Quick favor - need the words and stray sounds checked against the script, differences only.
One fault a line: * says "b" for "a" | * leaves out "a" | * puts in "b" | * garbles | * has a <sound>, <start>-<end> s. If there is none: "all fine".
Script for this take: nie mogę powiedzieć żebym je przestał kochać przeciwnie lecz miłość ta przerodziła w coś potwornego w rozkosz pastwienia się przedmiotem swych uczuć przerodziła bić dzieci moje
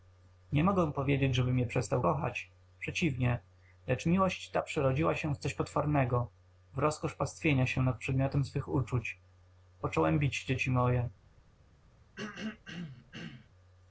* puts in "się"
* puts in "nad"
* says "począłem" for "przerodziła"
* has a throat clearing, 12.2-13.5 s